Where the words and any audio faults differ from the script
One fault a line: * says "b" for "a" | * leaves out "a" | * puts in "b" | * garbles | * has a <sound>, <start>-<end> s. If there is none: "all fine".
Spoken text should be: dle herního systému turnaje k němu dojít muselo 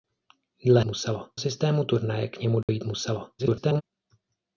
* says "muselo" for "herního"
* has a dropout, 2.6-2.7 s
* garbles